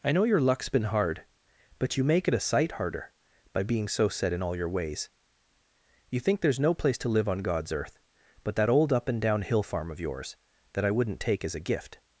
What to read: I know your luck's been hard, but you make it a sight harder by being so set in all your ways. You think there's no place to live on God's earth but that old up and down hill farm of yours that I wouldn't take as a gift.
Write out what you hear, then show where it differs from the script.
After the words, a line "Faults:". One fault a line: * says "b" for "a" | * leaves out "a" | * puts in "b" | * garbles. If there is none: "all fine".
I know your luck's been hard, but you make it a sight harder by being so set in all your ways. You think there's no place to live on God's earth but that old up and down hill farm of yours that I wouldn't take as a gift.
Faults:
all fine